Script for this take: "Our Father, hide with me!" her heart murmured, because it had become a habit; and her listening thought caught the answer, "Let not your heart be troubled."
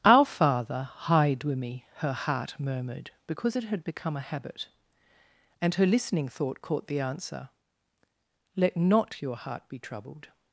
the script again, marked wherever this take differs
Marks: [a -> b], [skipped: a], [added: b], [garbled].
"Our Father, hide with me!" her heart murmured, because it had become a habit; and her listening thought caught the answer, "Let not your heart be troubled."